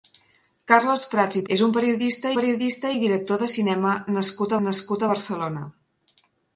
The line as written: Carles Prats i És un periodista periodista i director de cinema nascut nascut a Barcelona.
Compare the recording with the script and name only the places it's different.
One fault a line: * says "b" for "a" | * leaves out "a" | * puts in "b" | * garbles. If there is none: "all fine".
all fine